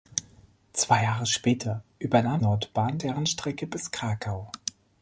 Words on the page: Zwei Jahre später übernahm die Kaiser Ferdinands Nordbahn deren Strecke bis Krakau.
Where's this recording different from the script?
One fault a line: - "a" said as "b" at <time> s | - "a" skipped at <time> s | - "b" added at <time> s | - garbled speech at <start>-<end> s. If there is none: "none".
- "die Kaiser Ferdinands" skipped at 2.4 s